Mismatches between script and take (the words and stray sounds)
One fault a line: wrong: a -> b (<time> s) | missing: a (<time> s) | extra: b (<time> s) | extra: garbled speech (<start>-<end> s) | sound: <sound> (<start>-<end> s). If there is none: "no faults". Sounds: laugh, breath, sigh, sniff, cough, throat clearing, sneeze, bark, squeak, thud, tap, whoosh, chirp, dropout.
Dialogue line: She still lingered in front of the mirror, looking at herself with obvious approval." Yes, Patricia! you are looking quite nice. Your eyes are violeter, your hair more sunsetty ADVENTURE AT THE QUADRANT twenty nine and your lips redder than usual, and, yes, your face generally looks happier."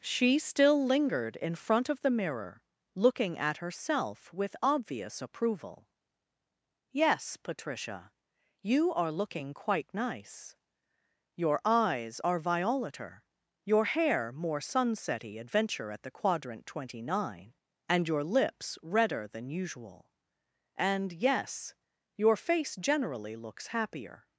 no faults